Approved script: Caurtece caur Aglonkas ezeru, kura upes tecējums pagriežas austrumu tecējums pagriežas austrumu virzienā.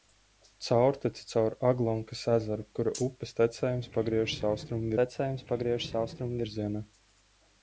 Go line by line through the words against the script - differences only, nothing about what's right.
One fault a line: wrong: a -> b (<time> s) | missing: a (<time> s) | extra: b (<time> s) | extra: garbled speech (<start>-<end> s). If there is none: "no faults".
no faults